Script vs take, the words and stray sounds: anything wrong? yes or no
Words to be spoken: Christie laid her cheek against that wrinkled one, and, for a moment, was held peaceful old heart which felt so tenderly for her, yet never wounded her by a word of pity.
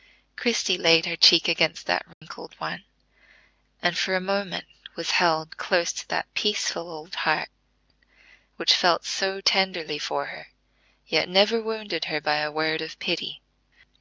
yes